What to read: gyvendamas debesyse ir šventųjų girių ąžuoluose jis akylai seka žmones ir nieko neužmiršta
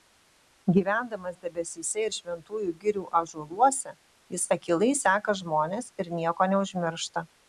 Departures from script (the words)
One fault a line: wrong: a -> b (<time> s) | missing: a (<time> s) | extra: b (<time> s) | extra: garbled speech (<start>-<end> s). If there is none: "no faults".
no faults